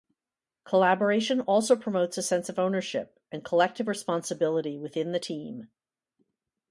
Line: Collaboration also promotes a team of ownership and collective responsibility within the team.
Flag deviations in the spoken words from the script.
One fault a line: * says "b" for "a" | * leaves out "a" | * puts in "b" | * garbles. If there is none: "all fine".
* says "sense" for "team"